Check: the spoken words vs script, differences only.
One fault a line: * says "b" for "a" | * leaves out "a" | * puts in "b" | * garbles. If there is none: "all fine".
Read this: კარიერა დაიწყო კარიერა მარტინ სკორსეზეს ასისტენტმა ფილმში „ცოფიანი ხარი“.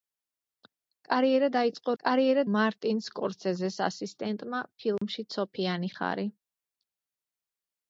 all fine